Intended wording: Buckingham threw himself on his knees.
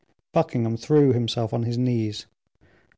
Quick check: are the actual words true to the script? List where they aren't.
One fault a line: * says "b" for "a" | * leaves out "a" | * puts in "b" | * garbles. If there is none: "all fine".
all fine